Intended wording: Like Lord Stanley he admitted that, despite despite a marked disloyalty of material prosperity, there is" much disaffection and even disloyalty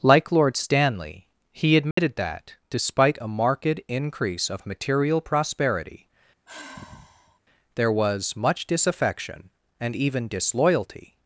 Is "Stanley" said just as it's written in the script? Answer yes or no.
yes